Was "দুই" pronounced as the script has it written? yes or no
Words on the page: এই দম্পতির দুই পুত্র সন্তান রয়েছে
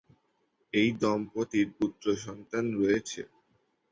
no